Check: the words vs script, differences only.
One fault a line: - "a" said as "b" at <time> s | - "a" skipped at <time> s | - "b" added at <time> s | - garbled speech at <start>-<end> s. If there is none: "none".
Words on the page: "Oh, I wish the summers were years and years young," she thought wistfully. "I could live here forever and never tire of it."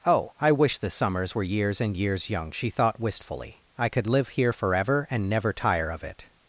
none